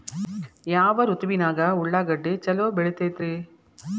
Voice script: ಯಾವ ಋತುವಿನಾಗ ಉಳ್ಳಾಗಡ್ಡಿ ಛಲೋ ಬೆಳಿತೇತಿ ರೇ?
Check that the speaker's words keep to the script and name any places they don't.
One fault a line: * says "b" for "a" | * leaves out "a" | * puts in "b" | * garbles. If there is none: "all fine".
all fine